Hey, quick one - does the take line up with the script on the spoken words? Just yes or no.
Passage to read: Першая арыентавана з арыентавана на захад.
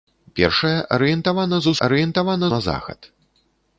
yes